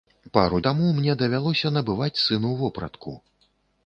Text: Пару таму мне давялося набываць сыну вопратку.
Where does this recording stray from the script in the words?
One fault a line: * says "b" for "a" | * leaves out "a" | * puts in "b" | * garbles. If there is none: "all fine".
all fine